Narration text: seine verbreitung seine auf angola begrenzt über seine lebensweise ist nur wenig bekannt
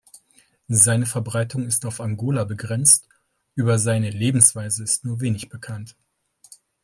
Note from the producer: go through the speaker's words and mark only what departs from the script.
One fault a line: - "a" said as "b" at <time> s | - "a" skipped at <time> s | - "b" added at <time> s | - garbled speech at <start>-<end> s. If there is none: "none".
- "seine" said as "ist" at 1.7 s